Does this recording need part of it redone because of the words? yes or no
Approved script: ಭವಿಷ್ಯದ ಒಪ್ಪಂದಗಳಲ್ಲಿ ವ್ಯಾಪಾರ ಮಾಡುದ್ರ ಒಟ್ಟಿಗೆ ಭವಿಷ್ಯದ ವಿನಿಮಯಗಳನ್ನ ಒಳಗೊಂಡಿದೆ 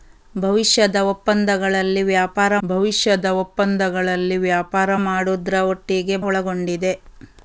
yes